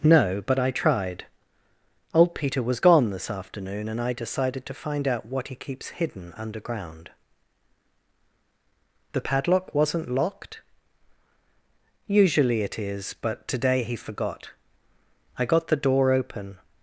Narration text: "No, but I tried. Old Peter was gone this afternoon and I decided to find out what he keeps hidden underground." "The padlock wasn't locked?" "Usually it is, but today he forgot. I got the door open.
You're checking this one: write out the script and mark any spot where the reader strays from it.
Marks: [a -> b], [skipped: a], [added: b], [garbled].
"No, but I tried. Old Peter was gone this afternoon and I decided to find out what he keeps hidden underground." "The padlock wasn't locked?" "Usually it is, but today he forgot. I got the door open.